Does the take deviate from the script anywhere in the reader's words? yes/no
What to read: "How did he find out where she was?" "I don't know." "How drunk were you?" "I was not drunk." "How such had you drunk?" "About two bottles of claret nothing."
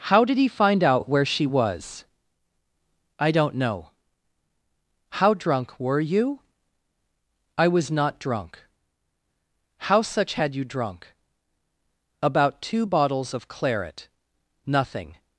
no